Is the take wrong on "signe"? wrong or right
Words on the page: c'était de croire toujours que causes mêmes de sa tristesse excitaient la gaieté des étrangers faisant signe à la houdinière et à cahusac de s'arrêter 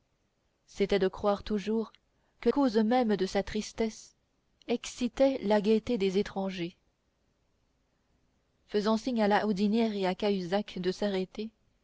right